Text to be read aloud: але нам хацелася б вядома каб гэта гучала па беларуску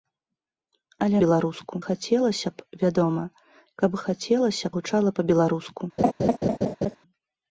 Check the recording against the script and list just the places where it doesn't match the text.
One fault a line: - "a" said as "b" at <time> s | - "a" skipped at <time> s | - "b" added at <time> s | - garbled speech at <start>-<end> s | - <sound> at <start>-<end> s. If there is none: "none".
- "нам" said as "беларуску" at 1.2 s
- "гэта" said as "хацелася" at 4.0 s
- laugh at 6.0-7.0 s